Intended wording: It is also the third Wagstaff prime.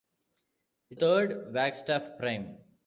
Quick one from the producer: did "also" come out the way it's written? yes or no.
no